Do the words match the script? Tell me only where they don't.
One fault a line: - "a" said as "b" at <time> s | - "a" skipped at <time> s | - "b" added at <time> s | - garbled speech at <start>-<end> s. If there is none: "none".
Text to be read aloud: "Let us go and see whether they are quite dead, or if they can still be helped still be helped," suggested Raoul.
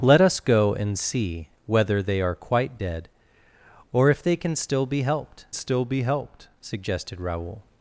none